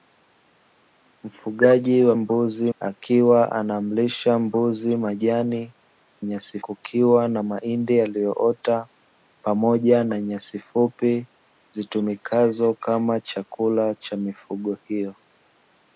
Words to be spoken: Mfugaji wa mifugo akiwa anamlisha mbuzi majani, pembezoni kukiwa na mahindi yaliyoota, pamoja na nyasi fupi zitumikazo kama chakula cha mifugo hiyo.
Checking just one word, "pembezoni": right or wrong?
wrong